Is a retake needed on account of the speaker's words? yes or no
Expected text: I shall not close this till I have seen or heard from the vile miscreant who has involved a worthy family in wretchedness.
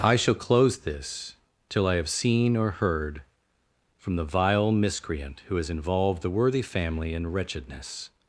yes